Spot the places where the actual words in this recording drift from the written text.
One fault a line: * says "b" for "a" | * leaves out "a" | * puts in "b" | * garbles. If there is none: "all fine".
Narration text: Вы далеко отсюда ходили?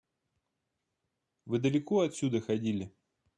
all fine